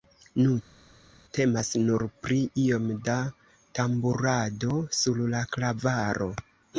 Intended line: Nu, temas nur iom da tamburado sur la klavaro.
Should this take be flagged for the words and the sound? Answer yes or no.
yes